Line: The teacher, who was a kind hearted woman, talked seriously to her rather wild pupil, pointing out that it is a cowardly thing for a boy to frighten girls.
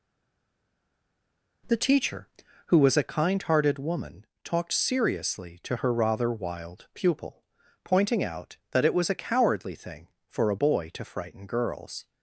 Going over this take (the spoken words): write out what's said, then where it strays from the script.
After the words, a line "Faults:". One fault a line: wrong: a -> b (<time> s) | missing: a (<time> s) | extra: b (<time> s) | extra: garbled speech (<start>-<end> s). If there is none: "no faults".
The teacher, who was a kind hearted woman, talked seriously to her rather wild pupil, pointing out that it was a cowardly thing for a boy to frighten girls.
Faults:
wrong: is -> was (8.9 s)